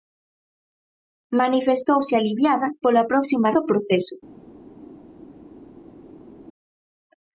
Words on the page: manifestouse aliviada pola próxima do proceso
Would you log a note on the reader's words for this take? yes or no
no